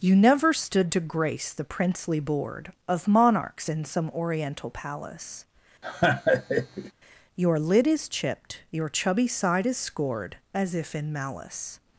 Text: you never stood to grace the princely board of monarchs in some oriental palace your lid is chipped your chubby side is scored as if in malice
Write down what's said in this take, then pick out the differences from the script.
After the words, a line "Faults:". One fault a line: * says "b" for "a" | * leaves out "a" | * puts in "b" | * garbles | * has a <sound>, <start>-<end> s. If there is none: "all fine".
you never stood to grace the princely board of monarchs in some oriental palace your lid is chipped your chubby side is scored as if in malice
Faults:
* has a laugh, 5.8-6.9 s